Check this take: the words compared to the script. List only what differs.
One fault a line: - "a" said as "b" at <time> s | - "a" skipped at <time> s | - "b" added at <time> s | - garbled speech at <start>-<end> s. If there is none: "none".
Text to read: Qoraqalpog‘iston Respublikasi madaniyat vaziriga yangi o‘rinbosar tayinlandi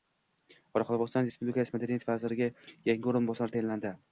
none